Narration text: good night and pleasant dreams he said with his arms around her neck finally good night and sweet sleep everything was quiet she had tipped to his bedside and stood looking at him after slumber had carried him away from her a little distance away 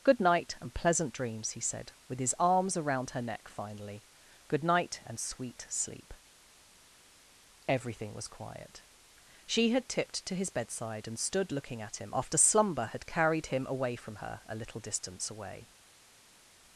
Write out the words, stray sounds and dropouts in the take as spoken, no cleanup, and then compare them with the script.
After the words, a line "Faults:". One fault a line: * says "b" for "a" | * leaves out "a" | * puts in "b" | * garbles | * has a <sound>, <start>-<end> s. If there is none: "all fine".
good night and pleasant dreams he said with his arms around her neck finally good night and sweet sleep everything was quiet she had tipped to his bedside and stood looking at him after slumber had carried him away from her a little distance away
Faults:
all fine